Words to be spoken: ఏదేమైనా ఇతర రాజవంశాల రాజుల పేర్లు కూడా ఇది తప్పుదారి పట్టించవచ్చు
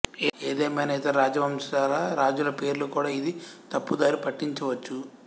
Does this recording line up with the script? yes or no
yes